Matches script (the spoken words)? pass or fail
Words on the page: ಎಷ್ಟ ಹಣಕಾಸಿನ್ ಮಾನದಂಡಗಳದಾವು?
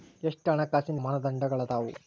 pass